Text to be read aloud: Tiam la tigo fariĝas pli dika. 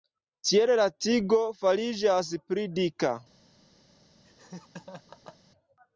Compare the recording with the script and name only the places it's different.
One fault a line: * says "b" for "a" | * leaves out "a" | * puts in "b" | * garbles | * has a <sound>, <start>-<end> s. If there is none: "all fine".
* says "Tiel" for "Tiam"
* has a laugh, 4.2-5.4 s